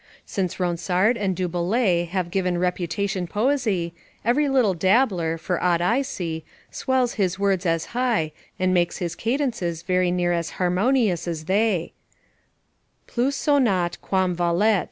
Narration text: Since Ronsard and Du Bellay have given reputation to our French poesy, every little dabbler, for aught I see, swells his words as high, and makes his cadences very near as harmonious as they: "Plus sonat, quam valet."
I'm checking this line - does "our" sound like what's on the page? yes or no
no